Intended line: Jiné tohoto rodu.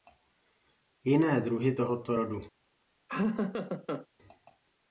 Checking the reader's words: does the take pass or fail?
fail